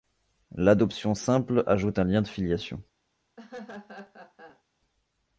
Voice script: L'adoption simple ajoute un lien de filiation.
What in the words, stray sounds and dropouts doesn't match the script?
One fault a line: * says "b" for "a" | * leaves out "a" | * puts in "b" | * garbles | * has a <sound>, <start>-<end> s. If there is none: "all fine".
* has a laugh, 3.4-4.6 s